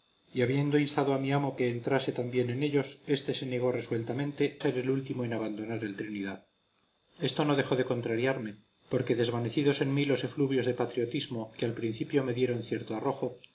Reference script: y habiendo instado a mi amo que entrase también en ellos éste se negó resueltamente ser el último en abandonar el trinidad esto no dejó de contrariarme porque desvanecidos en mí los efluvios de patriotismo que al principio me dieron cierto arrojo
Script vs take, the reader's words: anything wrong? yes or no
no